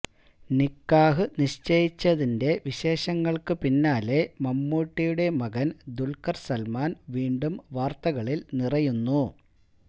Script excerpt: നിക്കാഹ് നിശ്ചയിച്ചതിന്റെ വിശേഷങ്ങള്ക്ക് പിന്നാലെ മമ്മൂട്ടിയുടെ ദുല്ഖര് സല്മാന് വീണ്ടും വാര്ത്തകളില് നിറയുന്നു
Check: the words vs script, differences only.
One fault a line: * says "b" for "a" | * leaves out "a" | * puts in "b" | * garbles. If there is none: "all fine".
* puts in "മകന്"